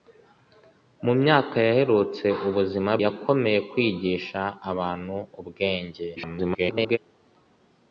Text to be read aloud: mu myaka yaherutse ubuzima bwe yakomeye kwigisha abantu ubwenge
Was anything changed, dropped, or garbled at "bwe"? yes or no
yes